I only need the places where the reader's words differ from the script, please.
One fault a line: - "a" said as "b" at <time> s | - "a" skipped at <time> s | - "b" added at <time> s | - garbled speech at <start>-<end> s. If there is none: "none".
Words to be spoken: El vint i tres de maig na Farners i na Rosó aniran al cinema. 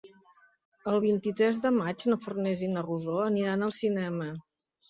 none